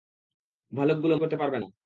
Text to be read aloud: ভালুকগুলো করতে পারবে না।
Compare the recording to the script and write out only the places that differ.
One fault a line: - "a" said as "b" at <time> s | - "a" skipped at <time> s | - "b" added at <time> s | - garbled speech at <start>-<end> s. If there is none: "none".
none